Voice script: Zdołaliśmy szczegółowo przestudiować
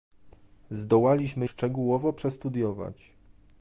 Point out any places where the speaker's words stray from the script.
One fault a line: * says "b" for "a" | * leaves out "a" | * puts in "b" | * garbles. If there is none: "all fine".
all fine